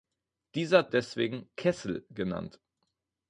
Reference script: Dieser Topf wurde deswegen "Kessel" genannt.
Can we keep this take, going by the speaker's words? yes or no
no